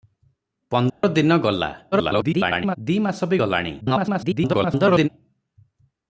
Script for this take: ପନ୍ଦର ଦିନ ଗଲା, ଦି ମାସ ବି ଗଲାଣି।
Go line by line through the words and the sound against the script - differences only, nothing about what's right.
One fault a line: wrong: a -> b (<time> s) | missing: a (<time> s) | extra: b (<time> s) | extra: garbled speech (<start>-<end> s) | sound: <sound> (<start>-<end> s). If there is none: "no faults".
sound: dropout (0.9-1.0 s)
extra: garbled speech (1.9-2.8 s)
extra: garbled speech (3.8-5.1 s)